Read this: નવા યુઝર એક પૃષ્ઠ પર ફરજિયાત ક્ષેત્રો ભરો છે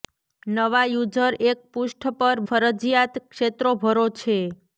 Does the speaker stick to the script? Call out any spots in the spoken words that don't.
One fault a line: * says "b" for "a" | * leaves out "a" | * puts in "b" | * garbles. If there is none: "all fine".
all fine